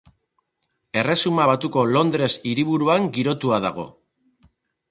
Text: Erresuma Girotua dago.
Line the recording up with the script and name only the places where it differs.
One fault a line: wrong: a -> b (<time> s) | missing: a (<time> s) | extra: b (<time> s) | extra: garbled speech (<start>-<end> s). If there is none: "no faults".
extra: Batuko Londres hiriburuan (1.5 s)